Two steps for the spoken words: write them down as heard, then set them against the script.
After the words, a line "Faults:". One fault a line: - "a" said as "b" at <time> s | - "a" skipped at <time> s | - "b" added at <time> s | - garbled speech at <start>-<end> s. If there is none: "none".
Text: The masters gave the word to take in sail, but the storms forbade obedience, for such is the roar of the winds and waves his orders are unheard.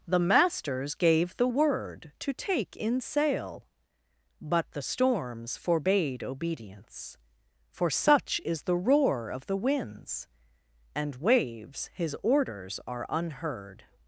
The masters gave the word to take in sail, but the storms forbade obedience, for such is the roar of the winds and waves his orders are unheard.
Faults:
none